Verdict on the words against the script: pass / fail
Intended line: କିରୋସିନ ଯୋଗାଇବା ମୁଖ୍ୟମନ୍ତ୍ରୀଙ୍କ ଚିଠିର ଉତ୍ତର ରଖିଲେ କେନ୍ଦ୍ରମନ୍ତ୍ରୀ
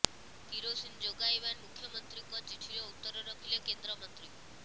pass